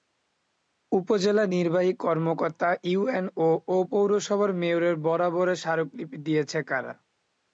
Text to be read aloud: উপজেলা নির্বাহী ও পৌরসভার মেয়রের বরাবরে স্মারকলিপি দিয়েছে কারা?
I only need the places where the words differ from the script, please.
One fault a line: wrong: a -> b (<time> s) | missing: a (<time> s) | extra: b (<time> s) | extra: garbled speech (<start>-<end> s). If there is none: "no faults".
extra: কর্মকর্তা ইউএনও (2.0 s)